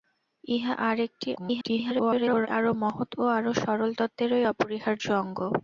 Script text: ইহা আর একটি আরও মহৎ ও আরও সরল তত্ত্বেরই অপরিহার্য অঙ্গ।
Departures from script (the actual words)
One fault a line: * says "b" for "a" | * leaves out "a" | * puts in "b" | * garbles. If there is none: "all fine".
* garbles